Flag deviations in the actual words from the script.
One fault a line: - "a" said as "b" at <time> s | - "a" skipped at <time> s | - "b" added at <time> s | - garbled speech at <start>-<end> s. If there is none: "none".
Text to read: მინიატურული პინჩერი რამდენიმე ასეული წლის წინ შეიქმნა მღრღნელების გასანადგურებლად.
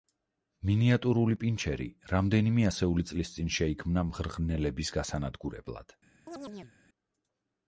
none